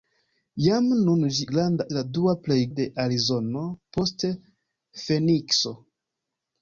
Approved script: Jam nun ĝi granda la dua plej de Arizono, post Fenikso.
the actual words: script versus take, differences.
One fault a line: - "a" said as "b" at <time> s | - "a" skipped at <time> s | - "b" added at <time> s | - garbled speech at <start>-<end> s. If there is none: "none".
none